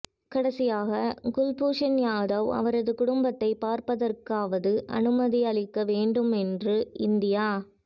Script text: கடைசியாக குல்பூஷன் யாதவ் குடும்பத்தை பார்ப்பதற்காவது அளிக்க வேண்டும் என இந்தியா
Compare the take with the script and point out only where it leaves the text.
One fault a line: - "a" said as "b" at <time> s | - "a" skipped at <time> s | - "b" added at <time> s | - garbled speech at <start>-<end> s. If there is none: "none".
- "அவரது" added at 2.6 s
- "அனுமதி" added at 5.0 s
- "என" said as "என்று" at 6.4 s